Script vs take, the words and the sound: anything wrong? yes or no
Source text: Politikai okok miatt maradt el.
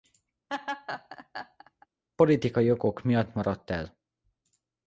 yes